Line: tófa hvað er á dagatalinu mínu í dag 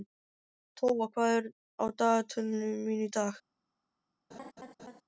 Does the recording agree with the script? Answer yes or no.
yes